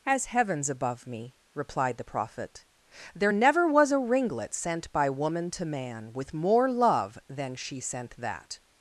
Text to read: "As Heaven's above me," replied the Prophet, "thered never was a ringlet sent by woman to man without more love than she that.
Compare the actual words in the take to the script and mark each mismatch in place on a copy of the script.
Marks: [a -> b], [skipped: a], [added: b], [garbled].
"As Heaven's above me," replied the Prophet, ["thered -> there] never was a ringlet sent by woman to man [without -> with] more love than she [added: sent] that.